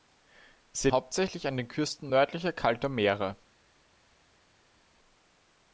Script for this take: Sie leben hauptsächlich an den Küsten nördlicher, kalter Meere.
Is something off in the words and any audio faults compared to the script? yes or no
yes